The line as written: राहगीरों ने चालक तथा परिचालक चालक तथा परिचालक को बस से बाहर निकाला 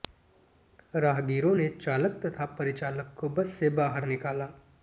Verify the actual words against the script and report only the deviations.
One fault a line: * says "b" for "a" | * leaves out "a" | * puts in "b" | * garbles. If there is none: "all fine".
* leaves out "चालक तथा परिचालक"